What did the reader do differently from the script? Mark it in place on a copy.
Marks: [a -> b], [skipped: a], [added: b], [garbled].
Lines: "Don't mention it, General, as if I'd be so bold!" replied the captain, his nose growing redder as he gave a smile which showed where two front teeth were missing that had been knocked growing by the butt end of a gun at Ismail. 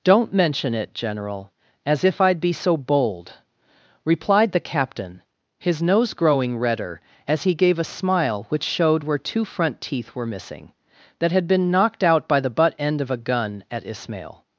"Don't mention it, General, as if I'd be so bold!" replied the captain, his nose growing redder as he gave a smile which showed where two front teeth were missing that had been knocked [growing -> out] by the butt end of a gun at Ismail.